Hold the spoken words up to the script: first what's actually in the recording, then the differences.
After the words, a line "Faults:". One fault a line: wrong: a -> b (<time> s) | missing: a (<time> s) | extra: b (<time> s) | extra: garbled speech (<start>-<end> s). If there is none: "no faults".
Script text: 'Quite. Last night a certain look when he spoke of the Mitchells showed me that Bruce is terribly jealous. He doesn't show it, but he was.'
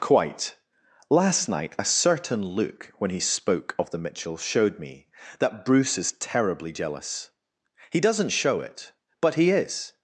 'Quite. Last night a certain look when he spoke of the Mitchells showed me that Bruce is terribly jealous. He doesn't show it, but he is.'
Faults:
wrong: was -> is (9.5 s)